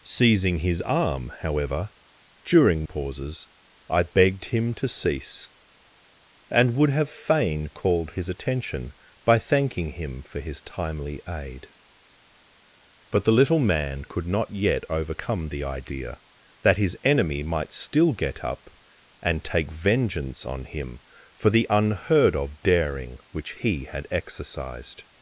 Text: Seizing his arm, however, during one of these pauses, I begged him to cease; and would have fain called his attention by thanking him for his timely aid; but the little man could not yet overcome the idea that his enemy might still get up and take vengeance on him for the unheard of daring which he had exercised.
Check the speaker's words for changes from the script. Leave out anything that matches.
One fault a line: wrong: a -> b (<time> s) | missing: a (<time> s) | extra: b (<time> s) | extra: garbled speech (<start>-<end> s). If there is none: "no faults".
missing: one of these (2.9 s)